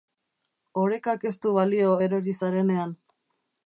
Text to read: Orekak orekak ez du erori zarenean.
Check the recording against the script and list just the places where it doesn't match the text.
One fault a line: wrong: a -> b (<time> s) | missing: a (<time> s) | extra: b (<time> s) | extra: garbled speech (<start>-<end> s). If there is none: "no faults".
missing: orekak (1.3 s)
extra: balio (1.6 s)